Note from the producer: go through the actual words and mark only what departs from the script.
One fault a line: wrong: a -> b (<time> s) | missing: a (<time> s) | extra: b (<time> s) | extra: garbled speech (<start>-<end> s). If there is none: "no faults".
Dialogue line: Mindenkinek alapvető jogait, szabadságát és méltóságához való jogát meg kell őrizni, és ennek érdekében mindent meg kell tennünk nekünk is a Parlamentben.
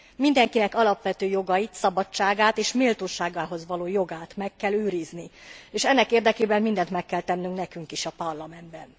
no faults